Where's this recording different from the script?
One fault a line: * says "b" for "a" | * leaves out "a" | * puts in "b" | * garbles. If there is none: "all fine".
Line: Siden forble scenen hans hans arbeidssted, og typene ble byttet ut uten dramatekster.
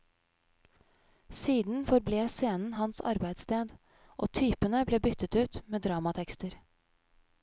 * leaves out "hans"
* says "med" for "uten"